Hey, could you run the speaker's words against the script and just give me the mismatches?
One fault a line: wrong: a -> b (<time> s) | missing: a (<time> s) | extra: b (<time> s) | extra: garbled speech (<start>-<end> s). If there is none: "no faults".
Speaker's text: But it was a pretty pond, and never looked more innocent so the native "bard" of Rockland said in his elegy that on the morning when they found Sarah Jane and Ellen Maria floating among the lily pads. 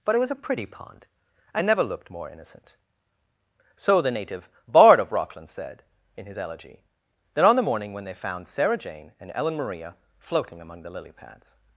no faults